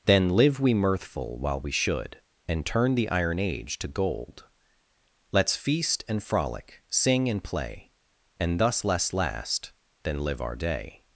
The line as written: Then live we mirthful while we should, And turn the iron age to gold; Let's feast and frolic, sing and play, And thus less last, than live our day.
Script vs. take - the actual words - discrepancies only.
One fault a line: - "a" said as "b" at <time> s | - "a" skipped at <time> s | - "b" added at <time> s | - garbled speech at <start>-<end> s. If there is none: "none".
none